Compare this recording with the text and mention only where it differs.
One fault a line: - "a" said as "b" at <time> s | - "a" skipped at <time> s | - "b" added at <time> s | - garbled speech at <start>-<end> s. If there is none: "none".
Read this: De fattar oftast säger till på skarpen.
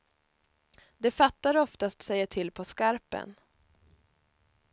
none